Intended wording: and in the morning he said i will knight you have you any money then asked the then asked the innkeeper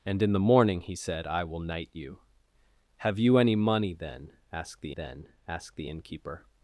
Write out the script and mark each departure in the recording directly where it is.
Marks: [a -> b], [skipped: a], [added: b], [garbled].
and in the morning he said i will knight you have you any money then asked the then asked the innkeeper